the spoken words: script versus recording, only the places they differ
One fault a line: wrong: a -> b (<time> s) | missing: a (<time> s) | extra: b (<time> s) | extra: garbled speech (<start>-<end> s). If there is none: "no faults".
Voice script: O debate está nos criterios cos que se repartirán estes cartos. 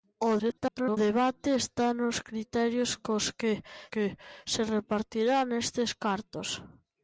extra: garbled speech (0.4-1.0 s)
extra: que (3.9 s)